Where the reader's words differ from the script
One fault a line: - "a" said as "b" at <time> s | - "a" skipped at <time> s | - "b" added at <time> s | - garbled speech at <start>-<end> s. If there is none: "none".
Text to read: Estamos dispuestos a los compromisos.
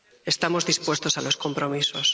none